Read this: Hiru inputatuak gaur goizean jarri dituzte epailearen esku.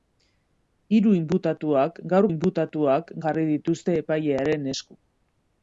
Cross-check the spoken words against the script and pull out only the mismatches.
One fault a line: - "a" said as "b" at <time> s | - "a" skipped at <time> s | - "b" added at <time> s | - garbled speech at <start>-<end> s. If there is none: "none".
- "goizean" said as "inputatuak" at 2.3 s